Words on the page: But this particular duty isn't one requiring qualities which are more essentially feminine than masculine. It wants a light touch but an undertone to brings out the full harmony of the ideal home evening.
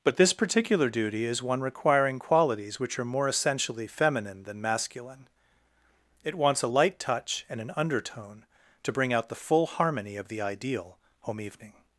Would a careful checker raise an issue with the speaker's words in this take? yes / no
yes